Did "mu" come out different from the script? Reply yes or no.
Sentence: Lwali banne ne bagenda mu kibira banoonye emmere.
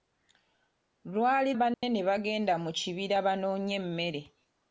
no